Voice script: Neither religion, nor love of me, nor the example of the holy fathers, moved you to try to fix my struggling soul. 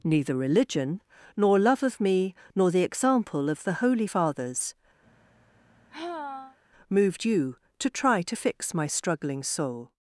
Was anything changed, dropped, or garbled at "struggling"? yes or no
no